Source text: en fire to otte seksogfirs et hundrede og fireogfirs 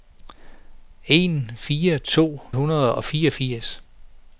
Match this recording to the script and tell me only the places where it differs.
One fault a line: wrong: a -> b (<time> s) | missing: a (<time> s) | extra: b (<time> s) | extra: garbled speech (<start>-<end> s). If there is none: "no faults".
missing: otte seksogfirs et (2.4 s)